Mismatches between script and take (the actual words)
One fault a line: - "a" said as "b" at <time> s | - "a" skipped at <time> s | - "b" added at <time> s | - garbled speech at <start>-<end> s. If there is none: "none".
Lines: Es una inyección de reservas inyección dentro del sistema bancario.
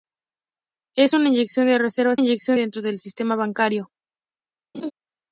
none